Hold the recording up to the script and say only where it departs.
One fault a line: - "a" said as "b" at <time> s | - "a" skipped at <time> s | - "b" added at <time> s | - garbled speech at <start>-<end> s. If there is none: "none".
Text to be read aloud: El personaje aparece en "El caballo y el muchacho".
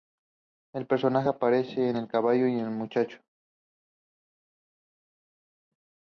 none